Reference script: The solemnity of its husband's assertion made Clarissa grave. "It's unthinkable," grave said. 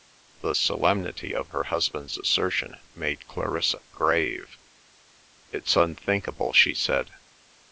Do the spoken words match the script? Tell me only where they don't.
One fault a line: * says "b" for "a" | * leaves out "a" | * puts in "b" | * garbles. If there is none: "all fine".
* says "her" for "its"
* says "she" for "grave"